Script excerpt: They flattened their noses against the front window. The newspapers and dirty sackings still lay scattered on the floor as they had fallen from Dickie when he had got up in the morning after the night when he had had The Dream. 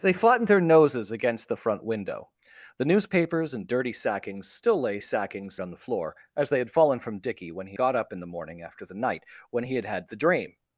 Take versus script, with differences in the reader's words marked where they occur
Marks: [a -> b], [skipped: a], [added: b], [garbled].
They flattened their noses against the front window. The newspapers and dirty sackings still lay [scattered -> sackings] on the floor as they had fallen from Dickie when he [skipped: had] got up in the morning after the night when he had had The Dream.